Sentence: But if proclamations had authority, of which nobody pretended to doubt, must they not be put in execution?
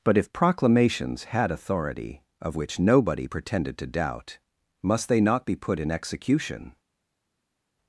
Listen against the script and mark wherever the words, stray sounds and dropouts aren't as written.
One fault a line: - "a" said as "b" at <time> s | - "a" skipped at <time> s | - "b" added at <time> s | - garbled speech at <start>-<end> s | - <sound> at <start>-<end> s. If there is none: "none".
none